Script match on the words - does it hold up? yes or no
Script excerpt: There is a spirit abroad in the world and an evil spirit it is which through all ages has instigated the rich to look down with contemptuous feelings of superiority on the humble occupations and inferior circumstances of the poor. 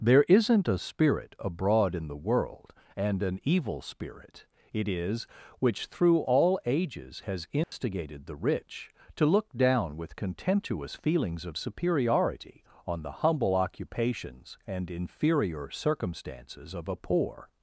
no